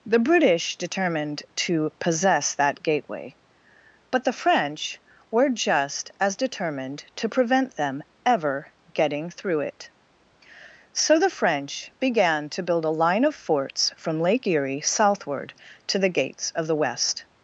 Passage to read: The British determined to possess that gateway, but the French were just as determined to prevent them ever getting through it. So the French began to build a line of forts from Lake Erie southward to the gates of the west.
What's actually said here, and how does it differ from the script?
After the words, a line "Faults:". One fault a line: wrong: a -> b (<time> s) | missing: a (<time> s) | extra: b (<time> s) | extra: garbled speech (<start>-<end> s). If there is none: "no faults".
The British determined to possess that gateway, but the French were just as determined to prevent them ever getting through it. So the French began to build a line of forts from Lake Erie southward to the gates of the west.
Faults:
no faults